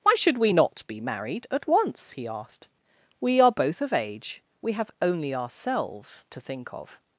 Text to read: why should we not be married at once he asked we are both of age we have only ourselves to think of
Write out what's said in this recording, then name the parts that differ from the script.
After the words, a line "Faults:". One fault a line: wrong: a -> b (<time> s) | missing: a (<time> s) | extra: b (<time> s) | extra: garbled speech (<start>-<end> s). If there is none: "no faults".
why should we not be married at once he asked we are both of age we have only ourselves to think of
Faults:
no faults